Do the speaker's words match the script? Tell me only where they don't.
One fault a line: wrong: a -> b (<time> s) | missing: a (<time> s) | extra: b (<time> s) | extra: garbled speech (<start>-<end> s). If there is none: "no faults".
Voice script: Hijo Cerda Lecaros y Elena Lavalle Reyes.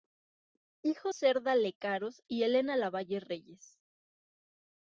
no faults